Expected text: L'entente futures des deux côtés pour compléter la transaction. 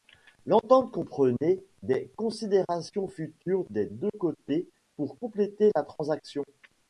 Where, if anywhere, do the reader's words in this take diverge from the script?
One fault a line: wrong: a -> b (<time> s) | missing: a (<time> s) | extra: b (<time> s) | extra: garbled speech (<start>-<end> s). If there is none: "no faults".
extra: comprenait des considérations (0.9 s)